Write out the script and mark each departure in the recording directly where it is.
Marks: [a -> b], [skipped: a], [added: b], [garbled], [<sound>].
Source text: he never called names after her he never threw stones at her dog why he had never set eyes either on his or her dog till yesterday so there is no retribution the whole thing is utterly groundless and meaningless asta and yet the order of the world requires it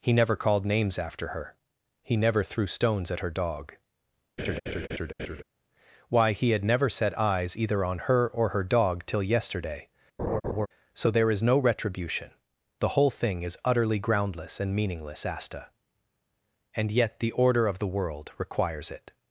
he never called names after her he never threw stones at her dog [laugh] why he had never set eyes either on [his -> her] or her dog till yesterday [laugh] so there is no retribution the whole thing is utterly groundless and meaningless asta and yet the order of the world requires it